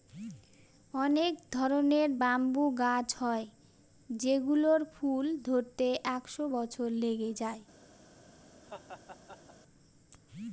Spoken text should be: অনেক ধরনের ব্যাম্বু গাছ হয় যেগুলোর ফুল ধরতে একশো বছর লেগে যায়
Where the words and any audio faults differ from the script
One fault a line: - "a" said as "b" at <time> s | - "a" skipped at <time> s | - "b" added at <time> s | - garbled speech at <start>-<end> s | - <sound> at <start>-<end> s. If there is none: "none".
- laugh at 8.6-9.5 s